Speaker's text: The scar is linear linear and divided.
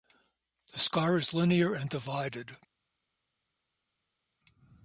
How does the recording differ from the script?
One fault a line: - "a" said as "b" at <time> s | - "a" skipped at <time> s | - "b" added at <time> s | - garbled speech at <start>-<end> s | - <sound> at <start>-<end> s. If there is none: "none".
- "linear" skipped at 1.8 s